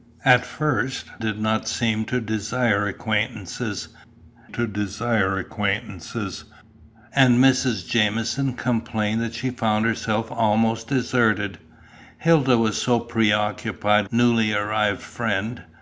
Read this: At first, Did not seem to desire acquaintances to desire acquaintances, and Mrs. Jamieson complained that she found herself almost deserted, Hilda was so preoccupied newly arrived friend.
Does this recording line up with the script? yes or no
yes